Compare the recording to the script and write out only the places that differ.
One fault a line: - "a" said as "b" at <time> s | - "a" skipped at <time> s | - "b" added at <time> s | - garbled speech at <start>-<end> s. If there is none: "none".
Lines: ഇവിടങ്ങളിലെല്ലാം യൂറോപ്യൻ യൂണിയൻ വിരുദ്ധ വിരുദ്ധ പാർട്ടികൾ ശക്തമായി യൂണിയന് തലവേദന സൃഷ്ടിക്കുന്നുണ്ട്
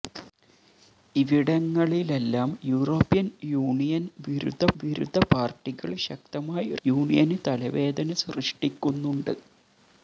none